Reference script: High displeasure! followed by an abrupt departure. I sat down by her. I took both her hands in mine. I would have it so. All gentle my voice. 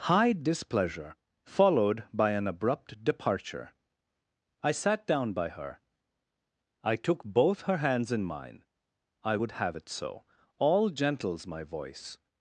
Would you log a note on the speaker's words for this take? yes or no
yes